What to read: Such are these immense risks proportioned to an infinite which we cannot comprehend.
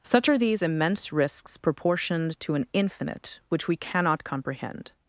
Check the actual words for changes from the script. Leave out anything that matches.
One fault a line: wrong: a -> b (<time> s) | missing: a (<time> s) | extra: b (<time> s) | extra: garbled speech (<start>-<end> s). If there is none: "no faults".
no faults